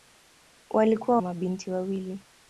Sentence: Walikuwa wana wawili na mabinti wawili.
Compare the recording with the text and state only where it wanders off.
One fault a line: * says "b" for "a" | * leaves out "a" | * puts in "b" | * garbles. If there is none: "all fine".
* leaves out "wana wawili na"